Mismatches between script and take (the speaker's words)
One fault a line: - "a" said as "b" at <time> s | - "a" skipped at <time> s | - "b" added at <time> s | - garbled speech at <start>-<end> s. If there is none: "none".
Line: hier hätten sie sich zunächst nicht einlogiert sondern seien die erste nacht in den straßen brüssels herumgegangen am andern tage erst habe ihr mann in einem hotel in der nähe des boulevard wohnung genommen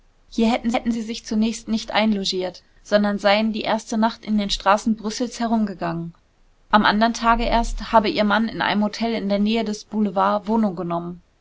- "hätten" added at 0.7 s